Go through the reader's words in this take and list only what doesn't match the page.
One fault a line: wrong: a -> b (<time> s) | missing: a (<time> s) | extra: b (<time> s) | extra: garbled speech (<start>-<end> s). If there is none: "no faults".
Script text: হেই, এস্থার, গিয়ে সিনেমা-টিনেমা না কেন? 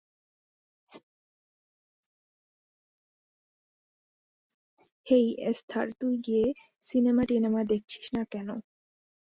extra: তুই (6.0 s)
extra: দেখছিস (7.7 s)